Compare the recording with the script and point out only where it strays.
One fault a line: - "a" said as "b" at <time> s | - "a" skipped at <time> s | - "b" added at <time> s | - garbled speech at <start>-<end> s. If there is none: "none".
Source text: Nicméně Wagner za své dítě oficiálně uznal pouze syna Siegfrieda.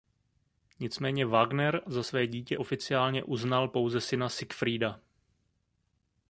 none